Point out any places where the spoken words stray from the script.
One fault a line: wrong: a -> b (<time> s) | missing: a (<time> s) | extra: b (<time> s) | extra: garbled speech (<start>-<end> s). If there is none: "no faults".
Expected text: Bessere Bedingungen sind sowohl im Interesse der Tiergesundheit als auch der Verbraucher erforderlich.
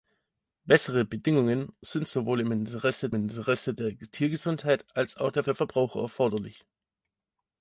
extra: Interesse (3.1 s)
extra: der (5.4 s)